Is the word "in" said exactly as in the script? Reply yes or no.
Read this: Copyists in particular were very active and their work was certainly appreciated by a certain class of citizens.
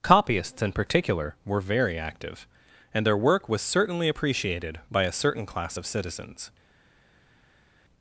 yes